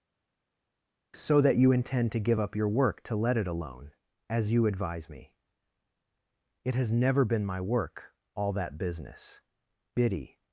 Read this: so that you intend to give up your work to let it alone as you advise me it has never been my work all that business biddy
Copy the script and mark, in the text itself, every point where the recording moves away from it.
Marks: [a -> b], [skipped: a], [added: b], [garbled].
so that you intend to give up your work to let it alone as you advise me it has never been my work all that business biddy